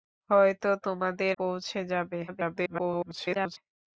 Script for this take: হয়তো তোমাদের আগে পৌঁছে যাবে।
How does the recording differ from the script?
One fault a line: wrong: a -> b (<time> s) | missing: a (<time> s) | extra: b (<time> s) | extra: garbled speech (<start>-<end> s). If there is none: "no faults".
missing: আগে (1.4 s)
extra: garbled speech (2.3-3.6 s)